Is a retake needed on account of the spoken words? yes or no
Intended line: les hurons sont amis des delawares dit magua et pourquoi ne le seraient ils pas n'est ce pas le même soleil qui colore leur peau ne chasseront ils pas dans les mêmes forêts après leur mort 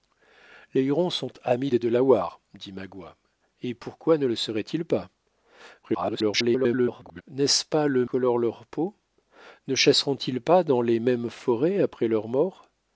yes